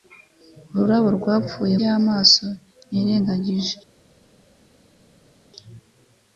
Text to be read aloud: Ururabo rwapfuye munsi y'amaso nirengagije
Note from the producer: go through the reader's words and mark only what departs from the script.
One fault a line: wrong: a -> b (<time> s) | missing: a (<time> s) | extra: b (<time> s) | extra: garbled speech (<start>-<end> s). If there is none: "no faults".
missing: munsi (1.8 s)